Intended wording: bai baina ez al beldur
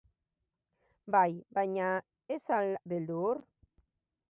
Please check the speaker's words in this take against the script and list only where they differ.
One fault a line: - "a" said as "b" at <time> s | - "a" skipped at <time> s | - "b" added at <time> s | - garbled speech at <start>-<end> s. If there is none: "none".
none